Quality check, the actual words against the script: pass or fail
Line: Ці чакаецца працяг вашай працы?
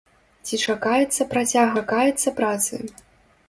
fail